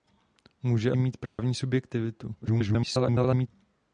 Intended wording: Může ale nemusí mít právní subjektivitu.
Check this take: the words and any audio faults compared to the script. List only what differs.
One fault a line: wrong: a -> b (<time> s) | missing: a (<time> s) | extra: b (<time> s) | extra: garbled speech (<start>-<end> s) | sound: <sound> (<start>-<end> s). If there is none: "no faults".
missing: ale nemusí (0.9 s)
sound: dropout (1.3-1.4 s)
extra: garbled speech (2.4-3.5 s)